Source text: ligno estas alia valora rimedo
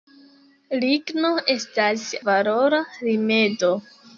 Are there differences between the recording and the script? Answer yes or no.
yes